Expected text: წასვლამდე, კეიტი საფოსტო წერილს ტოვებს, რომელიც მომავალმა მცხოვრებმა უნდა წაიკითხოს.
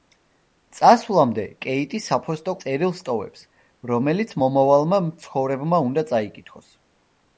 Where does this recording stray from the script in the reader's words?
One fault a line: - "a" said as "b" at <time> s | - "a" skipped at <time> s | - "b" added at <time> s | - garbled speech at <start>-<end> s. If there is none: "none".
none